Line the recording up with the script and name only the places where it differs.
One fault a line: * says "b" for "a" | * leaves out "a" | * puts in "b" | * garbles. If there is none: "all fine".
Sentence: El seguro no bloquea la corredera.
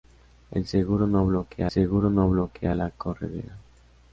* puts in "seguro no bloquea"